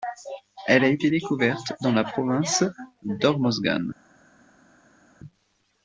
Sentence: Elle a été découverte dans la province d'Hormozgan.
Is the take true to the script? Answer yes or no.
yes